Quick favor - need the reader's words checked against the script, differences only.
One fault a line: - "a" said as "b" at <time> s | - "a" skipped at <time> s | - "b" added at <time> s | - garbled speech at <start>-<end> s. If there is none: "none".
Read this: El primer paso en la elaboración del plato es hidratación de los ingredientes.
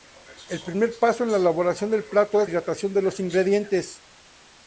none